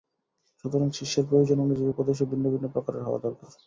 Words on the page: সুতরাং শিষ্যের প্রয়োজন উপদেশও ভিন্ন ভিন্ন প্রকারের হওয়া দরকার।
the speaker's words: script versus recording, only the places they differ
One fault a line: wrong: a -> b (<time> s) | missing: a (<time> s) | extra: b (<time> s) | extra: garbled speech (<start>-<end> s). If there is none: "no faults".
extra: অনুযায়ী (1.6 s)